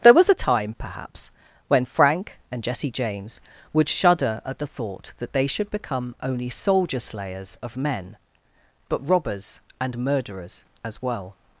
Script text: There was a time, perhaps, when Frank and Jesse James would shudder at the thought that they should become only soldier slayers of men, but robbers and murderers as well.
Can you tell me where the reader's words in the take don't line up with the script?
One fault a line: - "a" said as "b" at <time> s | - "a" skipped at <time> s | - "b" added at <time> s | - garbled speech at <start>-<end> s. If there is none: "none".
none